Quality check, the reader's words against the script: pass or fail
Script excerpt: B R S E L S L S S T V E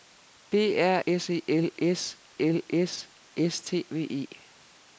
pass